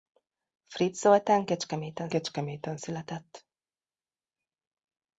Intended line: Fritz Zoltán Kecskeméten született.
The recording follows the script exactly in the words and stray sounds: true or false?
false